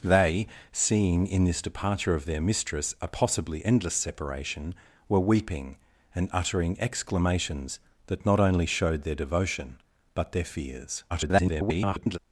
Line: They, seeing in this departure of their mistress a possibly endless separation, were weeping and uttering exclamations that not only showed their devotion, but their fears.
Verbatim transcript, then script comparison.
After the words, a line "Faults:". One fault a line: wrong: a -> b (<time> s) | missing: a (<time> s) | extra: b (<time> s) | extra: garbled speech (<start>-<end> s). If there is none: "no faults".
They, seeing in this departure of their mistress a possibly endless separation, were weeping and uttering exclamations that not only showed their devotion, but their fears. [garbled]
Faults:
extra: garbled speech (11.1-12.2 s)